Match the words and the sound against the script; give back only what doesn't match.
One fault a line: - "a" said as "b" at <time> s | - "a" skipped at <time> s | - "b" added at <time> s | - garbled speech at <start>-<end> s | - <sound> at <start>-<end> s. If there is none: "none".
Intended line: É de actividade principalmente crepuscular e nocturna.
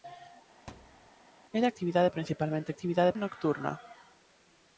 - thud at 0.7-1.1 s
- "crepuscular" said as "actividade" at 2.7 s